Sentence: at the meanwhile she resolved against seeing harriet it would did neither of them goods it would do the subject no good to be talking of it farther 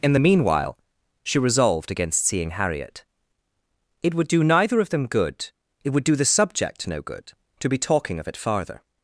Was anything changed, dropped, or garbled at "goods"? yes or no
yes